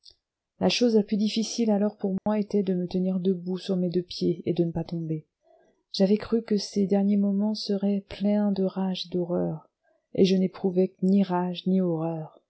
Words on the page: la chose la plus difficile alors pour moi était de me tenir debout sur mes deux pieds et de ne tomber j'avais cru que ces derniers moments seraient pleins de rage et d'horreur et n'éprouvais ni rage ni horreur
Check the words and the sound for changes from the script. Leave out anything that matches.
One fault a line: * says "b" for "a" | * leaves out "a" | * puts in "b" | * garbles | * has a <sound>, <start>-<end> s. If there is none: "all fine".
* has a dropout, 2.2-2.3 s
* puts in "pas"
* puts in "je"